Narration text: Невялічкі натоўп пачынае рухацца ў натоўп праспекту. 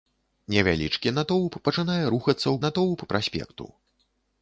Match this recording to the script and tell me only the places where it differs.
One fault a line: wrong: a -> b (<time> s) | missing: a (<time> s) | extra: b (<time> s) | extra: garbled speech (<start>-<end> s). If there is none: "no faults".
no faults